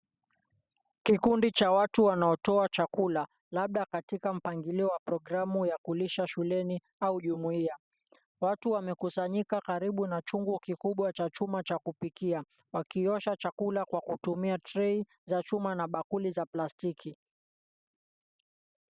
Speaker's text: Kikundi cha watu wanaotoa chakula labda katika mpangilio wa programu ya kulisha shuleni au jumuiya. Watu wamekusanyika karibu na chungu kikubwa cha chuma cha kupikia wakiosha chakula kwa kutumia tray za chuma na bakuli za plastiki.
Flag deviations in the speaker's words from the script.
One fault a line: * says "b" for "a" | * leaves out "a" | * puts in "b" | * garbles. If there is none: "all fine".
all fine